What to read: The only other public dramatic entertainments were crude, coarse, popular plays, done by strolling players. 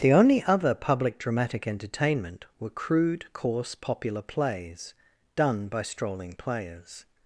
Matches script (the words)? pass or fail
fail